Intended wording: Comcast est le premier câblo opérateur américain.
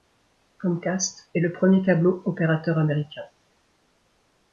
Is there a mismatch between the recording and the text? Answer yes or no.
no